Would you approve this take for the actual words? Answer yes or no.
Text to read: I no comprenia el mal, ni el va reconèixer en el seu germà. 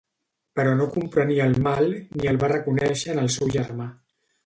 no